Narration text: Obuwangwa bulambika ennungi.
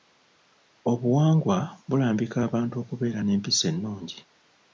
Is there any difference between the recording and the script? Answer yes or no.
yes